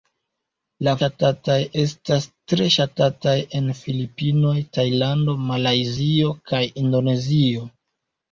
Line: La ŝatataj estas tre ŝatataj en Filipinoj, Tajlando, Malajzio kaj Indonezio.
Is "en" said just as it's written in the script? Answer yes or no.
yes